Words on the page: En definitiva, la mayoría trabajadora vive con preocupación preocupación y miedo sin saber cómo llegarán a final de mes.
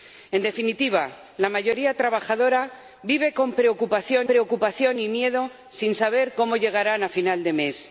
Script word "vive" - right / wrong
right